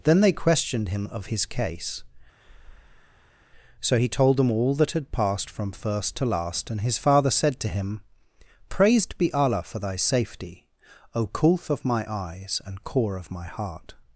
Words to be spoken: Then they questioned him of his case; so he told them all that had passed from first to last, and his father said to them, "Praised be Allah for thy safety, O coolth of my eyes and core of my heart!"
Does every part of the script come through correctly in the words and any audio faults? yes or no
no